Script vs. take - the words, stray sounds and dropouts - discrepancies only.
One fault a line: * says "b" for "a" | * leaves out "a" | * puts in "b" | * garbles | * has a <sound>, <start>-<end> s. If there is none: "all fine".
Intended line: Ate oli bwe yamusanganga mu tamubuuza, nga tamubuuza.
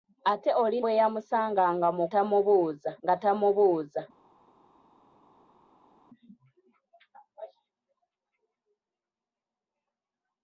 all fine